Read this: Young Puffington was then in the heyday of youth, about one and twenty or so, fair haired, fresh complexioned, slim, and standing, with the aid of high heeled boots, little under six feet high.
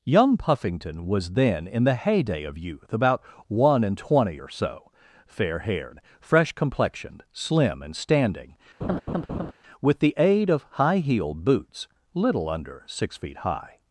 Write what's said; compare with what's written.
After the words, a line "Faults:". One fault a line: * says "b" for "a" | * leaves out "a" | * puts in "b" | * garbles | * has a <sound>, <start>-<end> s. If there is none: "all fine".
Young Puffington was then in the heyday of youth, about one and twenty or so, fair haired, fresh complexioned, slim, and standing, with the aid of high heeled boots, little under six feet high.
Faults:
* has a laugh, 8.8-9.5 s